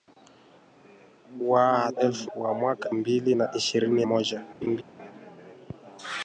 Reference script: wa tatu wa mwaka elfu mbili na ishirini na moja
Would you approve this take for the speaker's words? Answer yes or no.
no